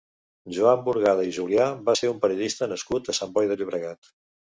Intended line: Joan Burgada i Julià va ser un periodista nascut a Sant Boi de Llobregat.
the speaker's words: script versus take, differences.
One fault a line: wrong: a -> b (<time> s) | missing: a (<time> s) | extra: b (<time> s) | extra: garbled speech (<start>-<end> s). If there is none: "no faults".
no faults